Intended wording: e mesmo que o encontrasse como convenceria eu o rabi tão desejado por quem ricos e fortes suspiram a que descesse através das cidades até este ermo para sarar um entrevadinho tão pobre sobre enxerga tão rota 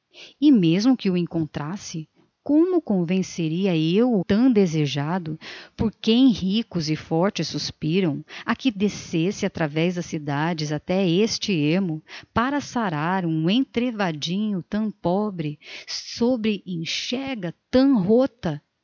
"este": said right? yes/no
yes